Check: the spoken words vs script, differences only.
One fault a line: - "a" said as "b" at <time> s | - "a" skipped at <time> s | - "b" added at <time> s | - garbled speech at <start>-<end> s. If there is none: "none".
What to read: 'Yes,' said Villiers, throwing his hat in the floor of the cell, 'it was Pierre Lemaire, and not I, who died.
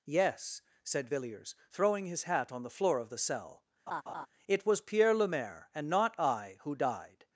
- "in" said as "on" at 2.5 s